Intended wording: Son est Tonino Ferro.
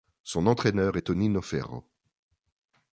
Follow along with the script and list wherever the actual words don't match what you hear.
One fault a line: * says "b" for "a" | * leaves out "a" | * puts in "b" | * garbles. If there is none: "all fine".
* puts in "entraîneur"